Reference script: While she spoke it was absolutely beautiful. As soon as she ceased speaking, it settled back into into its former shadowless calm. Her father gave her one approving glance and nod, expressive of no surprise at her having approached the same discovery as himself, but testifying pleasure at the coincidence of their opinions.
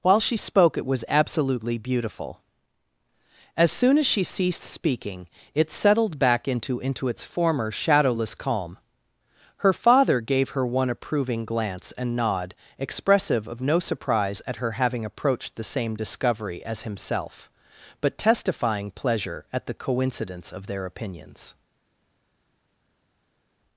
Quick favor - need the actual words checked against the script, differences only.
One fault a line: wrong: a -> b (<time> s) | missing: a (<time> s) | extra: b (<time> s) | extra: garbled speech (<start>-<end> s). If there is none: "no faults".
no faults